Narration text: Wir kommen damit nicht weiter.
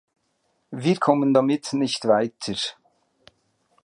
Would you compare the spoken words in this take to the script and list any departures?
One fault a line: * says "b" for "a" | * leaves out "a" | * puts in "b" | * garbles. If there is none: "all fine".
all fine